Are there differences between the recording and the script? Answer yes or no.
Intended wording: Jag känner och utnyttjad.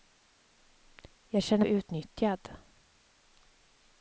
no